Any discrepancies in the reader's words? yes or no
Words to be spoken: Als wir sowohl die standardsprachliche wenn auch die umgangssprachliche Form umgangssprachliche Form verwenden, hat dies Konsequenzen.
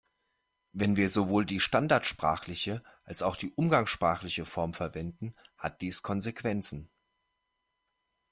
yes